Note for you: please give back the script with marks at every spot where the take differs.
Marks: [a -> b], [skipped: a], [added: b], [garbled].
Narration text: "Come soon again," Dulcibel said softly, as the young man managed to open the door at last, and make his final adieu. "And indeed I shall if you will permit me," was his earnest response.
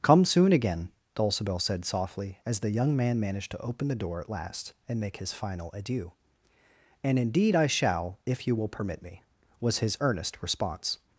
"Come soon again," Dulcibel said softly, as the young man managed to open the door at last, and make his final adieu. "And indeed I shall if you will permit me," was his earnest response.